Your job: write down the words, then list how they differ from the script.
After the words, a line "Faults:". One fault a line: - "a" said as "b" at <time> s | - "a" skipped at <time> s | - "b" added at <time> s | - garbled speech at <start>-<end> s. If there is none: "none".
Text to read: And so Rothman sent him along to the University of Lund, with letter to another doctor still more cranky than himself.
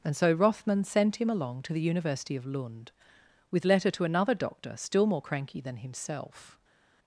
And so Rothman sent him along to the University of Lund, with letter to another doctor still more cranky than himself.
Faults:
none